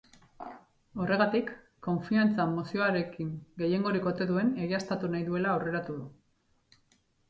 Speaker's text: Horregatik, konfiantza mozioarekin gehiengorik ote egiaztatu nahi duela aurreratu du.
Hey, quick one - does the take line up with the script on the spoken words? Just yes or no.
no